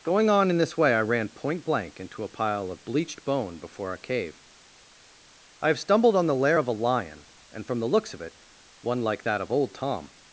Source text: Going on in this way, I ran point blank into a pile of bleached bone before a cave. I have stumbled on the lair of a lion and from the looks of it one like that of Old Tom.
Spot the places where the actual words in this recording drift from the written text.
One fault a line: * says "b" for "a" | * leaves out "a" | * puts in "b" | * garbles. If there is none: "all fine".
all fine